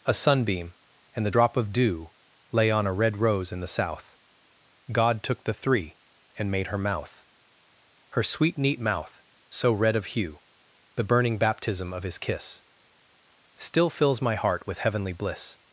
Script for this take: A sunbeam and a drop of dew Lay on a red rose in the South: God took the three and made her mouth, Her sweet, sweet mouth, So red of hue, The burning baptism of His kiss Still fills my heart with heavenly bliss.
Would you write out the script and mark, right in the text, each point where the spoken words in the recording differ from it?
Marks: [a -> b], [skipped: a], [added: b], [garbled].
A sunbeam and [a -> the] drop of dew Lay on a red rose in the South: God took the three and made her mouth, Her sweet, [sweet -> neat] mouth, So red of hue, The burning baptism of His kiss Still fills my heart with heavenly bliss.